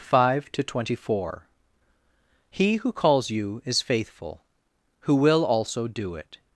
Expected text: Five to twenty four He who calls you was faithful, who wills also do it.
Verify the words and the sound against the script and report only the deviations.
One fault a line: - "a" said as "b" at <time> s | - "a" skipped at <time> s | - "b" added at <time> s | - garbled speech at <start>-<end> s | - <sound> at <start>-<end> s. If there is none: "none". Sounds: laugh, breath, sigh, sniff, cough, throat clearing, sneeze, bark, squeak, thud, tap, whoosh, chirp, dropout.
- "was" said as "is" at 3.6 s
- "wills" said as "will" at 5.1 s